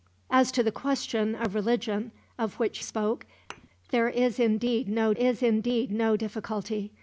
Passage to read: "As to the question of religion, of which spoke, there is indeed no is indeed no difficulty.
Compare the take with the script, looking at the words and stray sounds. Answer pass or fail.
fail